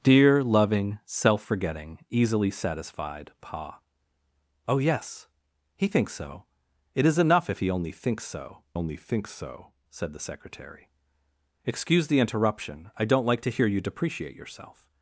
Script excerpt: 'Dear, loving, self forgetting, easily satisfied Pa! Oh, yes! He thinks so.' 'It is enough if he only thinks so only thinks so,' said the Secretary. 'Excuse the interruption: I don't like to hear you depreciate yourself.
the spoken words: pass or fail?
pass